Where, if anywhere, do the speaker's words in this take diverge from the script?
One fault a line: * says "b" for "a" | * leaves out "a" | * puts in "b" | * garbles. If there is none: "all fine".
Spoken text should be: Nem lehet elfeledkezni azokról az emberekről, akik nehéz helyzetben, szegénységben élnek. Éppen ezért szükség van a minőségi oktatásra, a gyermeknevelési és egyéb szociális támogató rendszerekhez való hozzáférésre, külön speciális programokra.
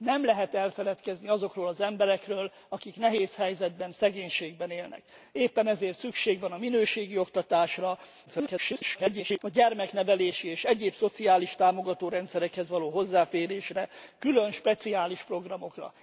* garbles